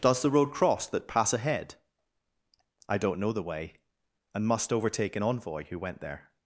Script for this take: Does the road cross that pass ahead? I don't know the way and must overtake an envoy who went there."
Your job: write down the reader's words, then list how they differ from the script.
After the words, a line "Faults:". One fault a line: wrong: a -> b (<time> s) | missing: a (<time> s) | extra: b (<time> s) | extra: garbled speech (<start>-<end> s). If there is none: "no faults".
Does the road cross that pass ahead? I don't know the way and must overtake an envoy who went there."
Faults:
no faults